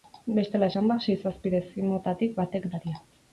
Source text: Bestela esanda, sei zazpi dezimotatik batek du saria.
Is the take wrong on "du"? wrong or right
wrong